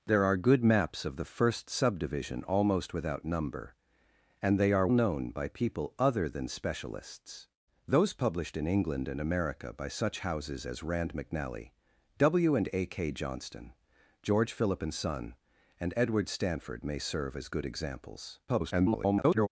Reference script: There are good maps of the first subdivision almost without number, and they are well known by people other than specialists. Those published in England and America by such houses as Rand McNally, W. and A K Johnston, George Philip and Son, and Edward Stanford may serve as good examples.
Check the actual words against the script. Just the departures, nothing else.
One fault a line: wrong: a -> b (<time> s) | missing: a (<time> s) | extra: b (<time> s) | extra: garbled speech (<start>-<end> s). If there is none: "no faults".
missing: well (4.9 s)
extra: garbled speech (18.5-19.5 s)